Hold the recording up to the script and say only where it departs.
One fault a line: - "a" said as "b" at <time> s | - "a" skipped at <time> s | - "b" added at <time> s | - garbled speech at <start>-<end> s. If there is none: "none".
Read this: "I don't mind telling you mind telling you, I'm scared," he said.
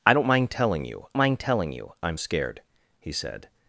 none